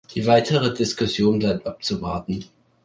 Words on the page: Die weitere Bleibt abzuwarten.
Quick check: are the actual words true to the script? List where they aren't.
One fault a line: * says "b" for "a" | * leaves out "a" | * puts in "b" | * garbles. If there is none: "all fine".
* puts in "Diskussion"